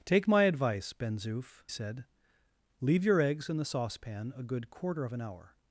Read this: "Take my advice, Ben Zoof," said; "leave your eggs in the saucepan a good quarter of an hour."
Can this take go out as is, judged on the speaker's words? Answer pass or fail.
pass